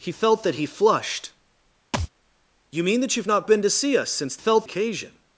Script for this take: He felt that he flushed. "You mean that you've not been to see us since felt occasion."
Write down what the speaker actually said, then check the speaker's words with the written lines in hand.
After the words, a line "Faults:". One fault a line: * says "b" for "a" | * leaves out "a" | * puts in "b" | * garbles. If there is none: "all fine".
He felt that he flushed. "You mean that you've not been to see us since felt occasion."
Faults:
all fine